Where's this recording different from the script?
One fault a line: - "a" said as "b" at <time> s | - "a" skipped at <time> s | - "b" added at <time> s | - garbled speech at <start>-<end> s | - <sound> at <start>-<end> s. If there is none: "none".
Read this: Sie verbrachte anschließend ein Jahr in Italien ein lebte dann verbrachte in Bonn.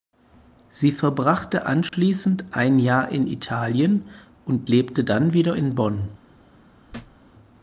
- dropout at 1.9-1.9 s
- "ein" said as "und" at 4.5 s
- "verbrachte" said as "wieder" at 5.3 s
- thud at 6.9-7.2 s